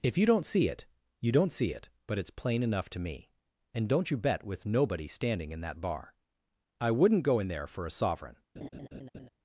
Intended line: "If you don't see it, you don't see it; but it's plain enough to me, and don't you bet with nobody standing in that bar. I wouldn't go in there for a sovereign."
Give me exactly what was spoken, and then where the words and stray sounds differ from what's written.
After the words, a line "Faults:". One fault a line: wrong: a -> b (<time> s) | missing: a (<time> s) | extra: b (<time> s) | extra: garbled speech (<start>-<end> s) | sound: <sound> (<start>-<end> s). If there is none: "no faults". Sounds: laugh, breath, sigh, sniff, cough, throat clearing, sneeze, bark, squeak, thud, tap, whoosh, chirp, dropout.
"If you don't see it, you don't see it; but it's plain enough to me, and don't you bet with nobody standing in that bar. I wouldn't go in there for a sovereign."
Faults:
sound: laugh (8.6-9.3 s)